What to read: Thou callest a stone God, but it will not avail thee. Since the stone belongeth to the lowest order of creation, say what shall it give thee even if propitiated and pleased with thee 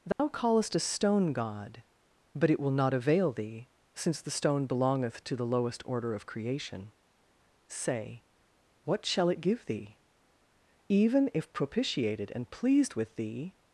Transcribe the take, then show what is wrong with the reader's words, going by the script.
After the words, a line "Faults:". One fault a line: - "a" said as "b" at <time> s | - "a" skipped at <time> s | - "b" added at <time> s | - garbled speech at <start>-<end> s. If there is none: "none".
Thou callest a stone God, but it will not avail thee. Since the stone belongeth to the lowest order of creation, say what shall it give thee even if propitiated and pleased with thee
Faults:
none